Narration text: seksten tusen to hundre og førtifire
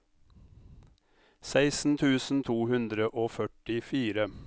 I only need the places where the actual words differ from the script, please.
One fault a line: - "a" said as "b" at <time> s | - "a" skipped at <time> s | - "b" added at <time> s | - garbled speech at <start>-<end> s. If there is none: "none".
none